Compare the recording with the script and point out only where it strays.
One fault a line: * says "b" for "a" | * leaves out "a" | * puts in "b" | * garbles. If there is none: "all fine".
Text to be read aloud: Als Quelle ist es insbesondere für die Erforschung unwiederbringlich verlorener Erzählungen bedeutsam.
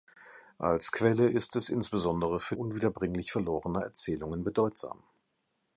* leaves out "die Erforschung"